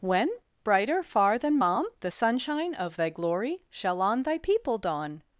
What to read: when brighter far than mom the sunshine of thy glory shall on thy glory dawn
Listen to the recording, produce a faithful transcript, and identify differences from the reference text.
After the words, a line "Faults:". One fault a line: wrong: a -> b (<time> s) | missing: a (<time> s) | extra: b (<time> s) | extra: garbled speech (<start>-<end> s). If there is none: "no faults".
when brighter far than mom the sunshine of thy glory shall on thy people dawn
Faults:
wrong: glory -> people (4.4 s)